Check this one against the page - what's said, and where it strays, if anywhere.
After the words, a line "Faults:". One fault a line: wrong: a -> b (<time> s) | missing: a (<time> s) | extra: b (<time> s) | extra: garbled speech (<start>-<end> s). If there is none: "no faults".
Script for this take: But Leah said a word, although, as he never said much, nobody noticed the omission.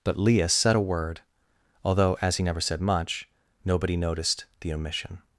But Leah said a word, although, as he never said much, nobody noticed the omission.
Faults:
no faults